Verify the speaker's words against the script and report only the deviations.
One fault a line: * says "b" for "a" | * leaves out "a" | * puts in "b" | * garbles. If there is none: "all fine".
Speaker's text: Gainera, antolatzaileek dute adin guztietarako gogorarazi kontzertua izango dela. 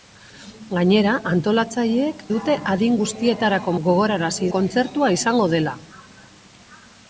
all fine